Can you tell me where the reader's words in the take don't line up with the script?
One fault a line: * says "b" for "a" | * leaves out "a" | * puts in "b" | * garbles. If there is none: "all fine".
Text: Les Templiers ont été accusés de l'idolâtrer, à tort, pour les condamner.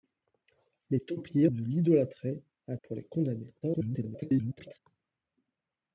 * leaves out "ont été accusés"
* leaves out "tort"
* garbles